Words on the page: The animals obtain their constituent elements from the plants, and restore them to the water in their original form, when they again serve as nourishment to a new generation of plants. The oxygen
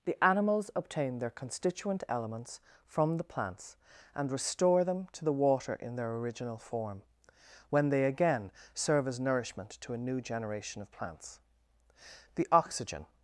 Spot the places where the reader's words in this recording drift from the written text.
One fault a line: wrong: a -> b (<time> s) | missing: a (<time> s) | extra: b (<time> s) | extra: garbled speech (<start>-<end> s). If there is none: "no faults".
no faults